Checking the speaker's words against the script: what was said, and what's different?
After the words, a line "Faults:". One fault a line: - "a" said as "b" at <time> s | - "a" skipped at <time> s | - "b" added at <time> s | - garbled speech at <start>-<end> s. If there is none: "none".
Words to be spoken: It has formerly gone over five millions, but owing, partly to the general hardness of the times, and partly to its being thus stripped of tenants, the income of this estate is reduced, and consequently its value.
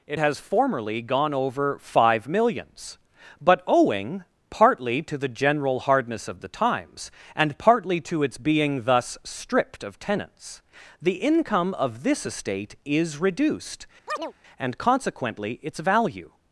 It has formerly gone over five millions, but owing, partly to the general hardness of the times, and partly to its being thus stripped of tenants, the income of this estate is reduced, and consequently its value.
Faults:
none